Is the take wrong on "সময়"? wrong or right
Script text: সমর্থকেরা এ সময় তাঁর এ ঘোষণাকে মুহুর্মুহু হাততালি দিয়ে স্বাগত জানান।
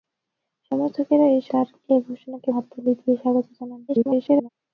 wrong